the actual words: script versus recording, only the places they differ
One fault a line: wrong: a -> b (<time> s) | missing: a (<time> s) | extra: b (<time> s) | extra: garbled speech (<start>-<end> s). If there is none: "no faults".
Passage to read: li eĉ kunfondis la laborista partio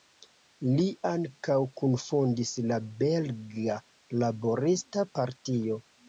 wrong: eĉ -> ankaŭ (1.1 s)
extra: belga (3.0 s)